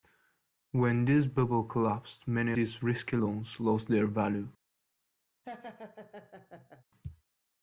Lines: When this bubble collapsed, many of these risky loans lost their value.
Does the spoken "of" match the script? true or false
false